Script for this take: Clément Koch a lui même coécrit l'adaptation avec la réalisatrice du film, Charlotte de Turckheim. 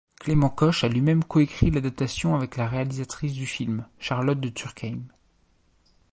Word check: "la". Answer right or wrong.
right